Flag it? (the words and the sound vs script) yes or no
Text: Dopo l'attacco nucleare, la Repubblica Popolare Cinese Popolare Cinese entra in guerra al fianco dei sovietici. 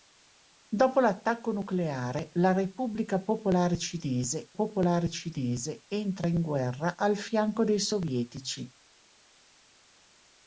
no